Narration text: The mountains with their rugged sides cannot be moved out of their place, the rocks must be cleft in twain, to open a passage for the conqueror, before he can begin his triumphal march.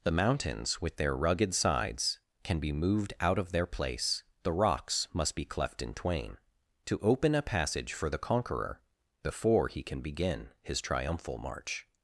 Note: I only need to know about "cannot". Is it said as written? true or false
false